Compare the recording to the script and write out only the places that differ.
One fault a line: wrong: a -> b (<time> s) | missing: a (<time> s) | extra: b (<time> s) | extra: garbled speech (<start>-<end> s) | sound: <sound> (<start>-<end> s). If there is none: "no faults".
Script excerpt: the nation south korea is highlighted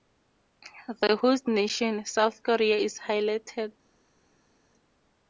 extra: host (1.2 s)